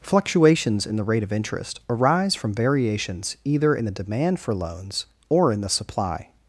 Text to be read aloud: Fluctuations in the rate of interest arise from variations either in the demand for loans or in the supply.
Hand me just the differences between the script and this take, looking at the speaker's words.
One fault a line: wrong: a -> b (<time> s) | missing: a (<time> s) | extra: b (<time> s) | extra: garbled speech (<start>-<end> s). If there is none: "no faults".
no faults